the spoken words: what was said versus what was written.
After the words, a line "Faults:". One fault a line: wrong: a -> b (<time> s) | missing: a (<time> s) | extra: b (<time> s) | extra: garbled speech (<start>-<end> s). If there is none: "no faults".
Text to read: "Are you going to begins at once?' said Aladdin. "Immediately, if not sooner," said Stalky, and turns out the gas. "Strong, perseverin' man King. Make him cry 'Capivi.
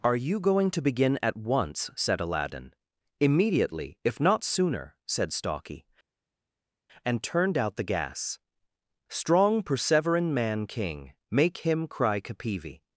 "Are you going to begin at once?' said Aladdin. "Immediately, if not sooner," said Stalky, and turned out the gas. "Strong, perseverin' man King. Make him cry 'Capivi.
Faults:
wrong: begins -> begin (0.8 s)
wrong: turns -> turned (7.2 s)